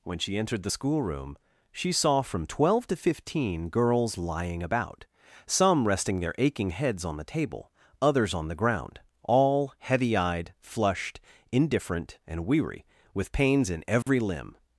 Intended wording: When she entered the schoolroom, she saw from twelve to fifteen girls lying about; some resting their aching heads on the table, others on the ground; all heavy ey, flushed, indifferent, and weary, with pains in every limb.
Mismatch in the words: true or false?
true